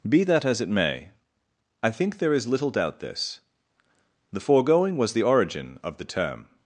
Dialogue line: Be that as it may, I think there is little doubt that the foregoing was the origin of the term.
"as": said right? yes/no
yes